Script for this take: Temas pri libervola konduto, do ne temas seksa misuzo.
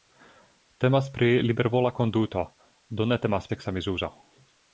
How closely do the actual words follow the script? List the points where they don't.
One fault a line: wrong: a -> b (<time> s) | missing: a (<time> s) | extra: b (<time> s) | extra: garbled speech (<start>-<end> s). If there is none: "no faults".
no faults